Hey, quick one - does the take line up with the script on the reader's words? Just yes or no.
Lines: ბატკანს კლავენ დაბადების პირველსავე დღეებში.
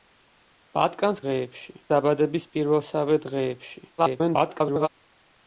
no